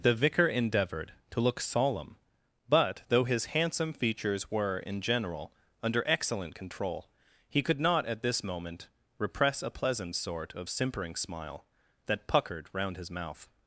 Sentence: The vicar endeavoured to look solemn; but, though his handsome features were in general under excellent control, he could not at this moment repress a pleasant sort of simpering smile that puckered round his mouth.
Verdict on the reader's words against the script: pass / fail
pass